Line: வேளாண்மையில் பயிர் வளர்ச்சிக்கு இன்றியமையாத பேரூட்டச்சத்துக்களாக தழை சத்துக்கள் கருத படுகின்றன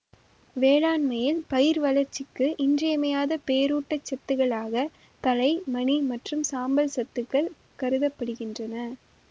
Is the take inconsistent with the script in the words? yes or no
yes